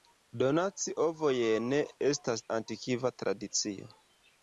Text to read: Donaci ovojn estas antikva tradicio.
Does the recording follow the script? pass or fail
pass